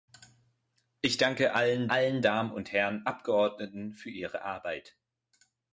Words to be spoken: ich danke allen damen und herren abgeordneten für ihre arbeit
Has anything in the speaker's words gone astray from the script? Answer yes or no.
yes